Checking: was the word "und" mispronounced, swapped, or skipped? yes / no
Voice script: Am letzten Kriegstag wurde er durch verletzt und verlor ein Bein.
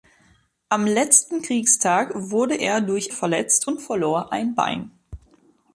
no